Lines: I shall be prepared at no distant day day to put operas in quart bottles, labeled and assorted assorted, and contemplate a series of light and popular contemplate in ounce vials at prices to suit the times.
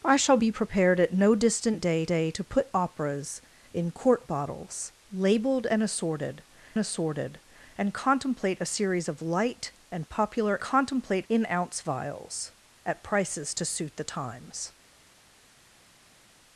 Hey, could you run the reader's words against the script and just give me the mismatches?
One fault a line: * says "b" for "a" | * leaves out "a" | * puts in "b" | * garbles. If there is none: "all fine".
all fine